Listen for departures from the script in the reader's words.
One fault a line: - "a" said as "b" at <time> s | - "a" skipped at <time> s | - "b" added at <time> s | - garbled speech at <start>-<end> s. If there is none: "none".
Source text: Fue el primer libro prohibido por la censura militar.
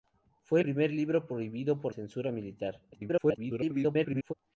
- "el" skipped at 0.6 s
- "la" skipped at 1.9 s
- garbled speech at 2.9-4.3 s